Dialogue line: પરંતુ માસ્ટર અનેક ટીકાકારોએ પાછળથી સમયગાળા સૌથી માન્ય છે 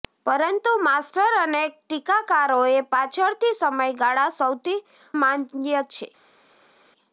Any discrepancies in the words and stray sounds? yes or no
no